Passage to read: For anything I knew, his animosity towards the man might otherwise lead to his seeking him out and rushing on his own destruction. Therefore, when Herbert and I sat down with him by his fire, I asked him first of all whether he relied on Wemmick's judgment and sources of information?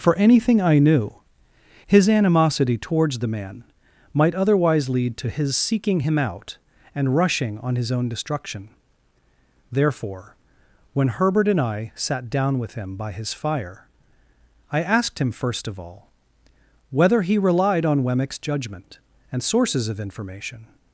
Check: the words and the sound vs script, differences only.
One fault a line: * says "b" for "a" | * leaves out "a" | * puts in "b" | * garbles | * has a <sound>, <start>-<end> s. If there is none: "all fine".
all fine